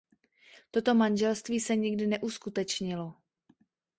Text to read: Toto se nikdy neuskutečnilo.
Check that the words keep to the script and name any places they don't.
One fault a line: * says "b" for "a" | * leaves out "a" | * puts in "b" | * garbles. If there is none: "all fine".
* puts in "manželství"